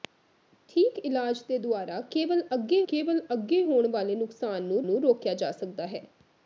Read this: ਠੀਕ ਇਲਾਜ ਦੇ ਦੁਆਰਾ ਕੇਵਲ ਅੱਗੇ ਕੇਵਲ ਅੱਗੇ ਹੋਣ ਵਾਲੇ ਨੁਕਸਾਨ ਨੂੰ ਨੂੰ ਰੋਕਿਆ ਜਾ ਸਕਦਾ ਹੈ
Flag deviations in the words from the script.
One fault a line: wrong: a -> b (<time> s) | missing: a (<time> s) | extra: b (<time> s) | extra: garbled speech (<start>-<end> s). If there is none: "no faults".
no faults